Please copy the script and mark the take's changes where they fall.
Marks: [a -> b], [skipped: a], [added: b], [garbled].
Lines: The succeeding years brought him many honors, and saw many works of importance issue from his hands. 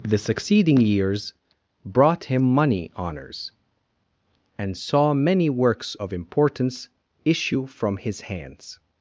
The succeeding years brought him [many -> money] honors, and saw many works of importance issue from his hands.